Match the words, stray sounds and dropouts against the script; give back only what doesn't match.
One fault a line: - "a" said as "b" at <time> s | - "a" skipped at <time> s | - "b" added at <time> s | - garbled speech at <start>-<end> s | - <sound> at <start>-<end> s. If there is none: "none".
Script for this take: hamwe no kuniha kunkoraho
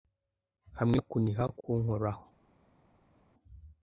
none